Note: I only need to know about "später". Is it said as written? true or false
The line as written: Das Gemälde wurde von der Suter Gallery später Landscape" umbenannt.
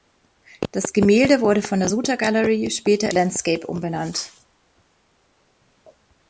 true